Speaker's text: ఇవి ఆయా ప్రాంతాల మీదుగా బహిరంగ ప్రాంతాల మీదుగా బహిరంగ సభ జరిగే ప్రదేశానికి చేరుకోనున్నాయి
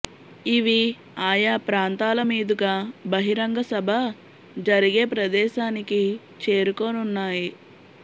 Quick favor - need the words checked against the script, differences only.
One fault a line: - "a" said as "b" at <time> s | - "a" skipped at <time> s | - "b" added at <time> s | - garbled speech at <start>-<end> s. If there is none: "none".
- "ప్రాంతాల మీదుగా బహిరంగ" skipped at 3.6 s